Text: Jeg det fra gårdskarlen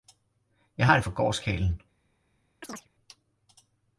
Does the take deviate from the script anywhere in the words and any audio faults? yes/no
yes